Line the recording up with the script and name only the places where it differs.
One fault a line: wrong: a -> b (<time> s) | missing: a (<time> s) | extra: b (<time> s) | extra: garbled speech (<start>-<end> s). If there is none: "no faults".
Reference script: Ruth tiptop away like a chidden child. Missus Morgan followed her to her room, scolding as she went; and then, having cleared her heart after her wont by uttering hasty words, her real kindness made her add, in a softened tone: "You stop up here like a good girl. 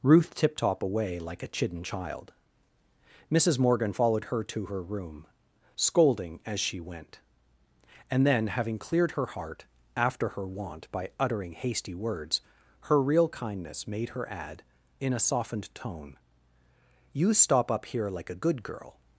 no faults